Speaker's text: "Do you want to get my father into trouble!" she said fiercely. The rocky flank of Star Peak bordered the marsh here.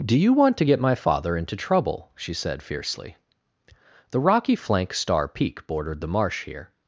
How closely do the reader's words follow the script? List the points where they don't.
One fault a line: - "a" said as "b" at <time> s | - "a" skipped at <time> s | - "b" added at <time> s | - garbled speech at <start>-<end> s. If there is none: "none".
- "of" skipped at 4.9 s